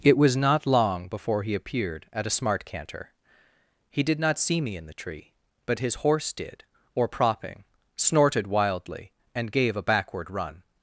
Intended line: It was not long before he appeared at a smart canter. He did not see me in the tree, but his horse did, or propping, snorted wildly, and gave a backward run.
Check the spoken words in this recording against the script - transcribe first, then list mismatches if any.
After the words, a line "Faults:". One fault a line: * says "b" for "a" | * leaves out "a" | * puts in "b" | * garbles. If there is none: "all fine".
It was not long before he appeared at a smart canter. He did not see me in the tree, but his horse did, or propping, snorted wildly, and gave a backward run.
Faults:
all fine